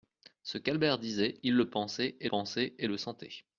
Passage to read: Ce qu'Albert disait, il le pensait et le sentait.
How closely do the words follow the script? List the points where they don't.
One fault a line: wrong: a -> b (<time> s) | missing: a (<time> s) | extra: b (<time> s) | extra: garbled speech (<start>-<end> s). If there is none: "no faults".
extra: pensait et (2.3 s)